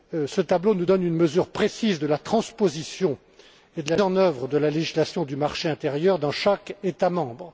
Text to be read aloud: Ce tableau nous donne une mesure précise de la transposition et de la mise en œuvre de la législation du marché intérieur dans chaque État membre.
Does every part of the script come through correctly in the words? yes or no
no